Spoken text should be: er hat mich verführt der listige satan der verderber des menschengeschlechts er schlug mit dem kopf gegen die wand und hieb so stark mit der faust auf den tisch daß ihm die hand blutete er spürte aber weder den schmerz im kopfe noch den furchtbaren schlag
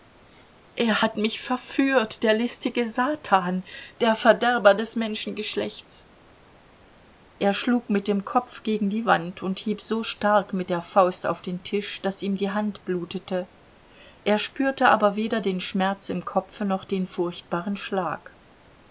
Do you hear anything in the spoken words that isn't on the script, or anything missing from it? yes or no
no